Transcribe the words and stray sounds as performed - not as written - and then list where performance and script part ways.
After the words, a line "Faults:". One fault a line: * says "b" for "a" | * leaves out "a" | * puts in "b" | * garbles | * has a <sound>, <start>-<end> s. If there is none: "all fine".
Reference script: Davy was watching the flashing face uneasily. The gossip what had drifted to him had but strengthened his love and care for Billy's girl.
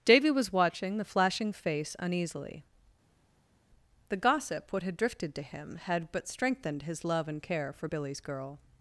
Davy was watching the flashing face uneasily. The gossip what had drifted to him had but strengthened his love and care for Billy's girl.
Faults:
all fine